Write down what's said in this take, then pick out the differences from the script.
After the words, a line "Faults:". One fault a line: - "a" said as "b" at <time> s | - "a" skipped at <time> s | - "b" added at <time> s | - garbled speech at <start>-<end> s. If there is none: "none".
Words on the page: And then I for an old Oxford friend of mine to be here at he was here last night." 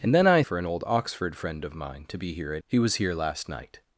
And then I for an old Oxford friend of mine to be here at he was here last night."
Faults:
none